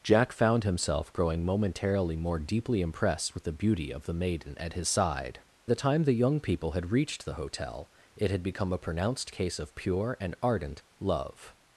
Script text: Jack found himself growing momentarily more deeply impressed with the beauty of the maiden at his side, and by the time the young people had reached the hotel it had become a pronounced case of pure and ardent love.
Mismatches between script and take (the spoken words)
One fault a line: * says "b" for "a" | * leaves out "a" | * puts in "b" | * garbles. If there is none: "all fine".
* leaves out "and by"